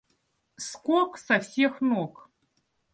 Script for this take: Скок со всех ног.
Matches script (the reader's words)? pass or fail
pass